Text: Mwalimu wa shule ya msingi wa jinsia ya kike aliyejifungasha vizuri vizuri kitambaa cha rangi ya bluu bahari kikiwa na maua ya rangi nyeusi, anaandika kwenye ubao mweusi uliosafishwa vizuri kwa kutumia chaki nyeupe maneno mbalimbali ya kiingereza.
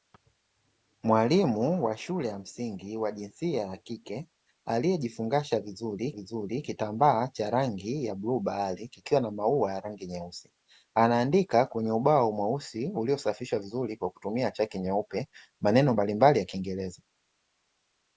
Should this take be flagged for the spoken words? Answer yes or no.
no